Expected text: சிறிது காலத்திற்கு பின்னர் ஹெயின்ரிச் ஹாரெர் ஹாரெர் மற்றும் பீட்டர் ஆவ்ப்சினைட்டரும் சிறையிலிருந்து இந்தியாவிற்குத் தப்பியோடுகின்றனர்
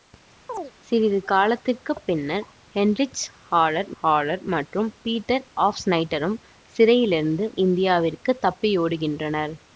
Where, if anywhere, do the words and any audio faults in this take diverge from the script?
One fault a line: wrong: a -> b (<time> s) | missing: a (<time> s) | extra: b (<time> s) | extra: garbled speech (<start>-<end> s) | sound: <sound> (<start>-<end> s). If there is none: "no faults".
sound: chirp (0.5-0.7 s)